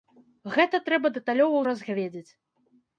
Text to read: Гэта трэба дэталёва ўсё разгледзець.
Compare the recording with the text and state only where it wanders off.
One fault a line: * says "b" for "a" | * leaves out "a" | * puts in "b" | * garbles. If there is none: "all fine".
* leaves out "ўсё"